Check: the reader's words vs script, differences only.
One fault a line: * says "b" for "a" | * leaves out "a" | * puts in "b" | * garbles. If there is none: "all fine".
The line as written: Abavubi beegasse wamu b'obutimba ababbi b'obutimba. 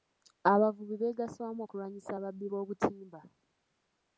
* says "okulwanyisa" for "b'obutimba"